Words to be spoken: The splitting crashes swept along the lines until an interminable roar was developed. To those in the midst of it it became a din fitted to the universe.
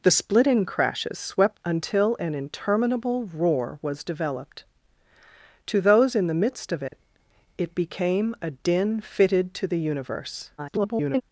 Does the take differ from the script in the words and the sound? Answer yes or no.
yes